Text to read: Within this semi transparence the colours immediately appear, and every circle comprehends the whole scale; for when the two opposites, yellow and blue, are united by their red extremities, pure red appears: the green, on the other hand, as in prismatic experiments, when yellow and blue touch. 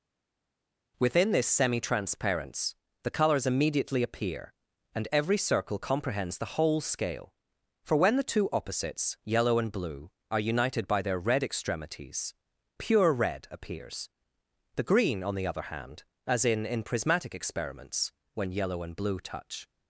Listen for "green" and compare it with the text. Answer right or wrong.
right